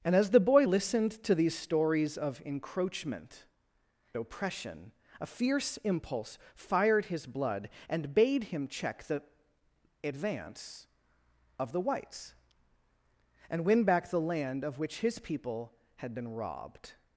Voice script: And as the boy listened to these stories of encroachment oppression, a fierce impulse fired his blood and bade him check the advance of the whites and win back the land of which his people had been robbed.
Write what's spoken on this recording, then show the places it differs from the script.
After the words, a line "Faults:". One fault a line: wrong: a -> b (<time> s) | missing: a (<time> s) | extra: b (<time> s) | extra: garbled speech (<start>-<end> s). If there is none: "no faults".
And as the boy listened to these stories of encroachment oppression, a fierce impulse fired his blood and bade him check the advance of the whites and win back the land of which his people had been robbed.
Faults:
no faults